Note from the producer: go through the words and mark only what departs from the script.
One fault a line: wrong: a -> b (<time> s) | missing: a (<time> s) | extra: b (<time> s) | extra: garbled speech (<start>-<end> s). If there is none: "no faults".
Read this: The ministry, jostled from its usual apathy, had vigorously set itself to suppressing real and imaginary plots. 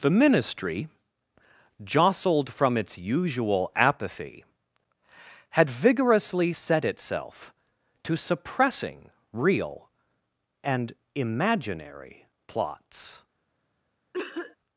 no faults